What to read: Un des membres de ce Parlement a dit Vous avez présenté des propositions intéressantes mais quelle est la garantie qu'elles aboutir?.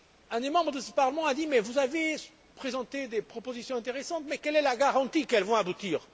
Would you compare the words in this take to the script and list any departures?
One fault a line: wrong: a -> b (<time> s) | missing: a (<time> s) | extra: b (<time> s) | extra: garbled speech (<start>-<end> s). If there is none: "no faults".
extra: vont (5.4 s)